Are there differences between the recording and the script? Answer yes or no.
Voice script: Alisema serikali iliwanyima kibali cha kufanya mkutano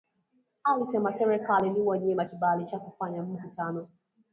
no